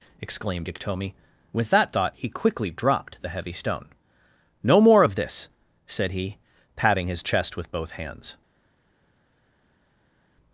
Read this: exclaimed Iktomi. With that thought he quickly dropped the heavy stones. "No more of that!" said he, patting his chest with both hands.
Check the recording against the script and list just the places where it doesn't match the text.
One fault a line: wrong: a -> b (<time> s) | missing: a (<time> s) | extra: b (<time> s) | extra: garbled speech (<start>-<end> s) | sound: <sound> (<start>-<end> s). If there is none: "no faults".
wrong: stones -> stone (3.5 s)
wrong: that -> this (5.2 s)